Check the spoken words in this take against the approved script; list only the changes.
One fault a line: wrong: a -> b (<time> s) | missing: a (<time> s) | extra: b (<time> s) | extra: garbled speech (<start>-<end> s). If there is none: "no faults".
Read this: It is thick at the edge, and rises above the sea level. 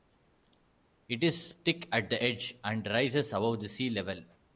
no faults